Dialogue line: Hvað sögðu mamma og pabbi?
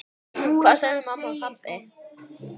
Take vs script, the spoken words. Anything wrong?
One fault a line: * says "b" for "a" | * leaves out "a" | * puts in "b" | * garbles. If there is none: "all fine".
all fine